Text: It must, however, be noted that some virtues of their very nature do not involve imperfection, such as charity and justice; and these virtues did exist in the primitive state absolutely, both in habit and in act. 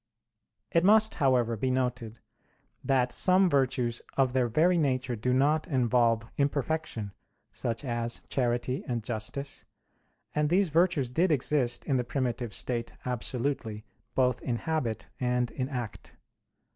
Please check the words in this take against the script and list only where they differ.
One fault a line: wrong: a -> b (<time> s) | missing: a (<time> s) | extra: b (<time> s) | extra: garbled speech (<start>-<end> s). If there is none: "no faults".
no faults